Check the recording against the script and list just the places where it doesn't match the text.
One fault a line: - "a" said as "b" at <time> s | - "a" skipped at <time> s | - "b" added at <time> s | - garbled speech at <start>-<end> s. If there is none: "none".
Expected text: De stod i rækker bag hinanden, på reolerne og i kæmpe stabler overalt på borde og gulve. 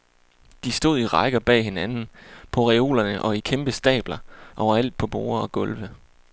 none